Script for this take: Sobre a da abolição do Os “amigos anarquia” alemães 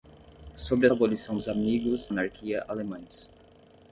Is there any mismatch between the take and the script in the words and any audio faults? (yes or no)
no